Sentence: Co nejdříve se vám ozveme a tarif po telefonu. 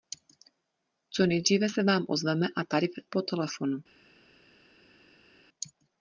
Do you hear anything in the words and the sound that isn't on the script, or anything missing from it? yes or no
no